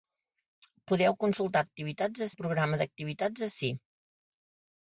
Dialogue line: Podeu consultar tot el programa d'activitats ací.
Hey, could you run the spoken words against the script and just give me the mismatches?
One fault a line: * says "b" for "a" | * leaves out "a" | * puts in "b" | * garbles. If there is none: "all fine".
* says "d'activitats" for "tot"